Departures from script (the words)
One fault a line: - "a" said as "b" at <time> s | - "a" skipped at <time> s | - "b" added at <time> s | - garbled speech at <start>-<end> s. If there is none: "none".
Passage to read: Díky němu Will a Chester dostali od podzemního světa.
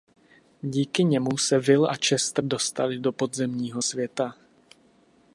- "se" added at 1.4 s
- "od" said as "do" at 3.0 s